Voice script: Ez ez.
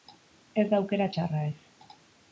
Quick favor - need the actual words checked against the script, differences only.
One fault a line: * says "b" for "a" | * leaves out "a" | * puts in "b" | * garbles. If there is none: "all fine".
* puts in "da aukera txarra"